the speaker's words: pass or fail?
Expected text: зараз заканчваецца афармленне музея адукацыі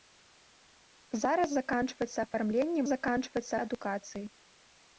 fail